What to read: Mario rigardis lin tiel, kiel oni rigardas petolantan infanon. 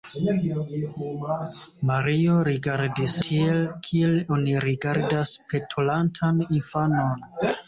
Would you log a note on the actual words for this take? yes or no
yes